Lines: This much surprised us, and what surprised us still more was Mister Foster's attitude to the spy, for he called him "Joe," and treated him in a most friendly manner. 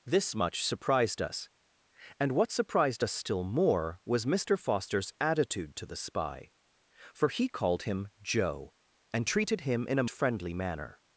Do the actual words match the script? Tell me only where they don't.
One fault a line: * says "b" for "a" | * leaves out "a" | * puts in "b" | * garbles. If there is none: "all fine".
* leaves out "most"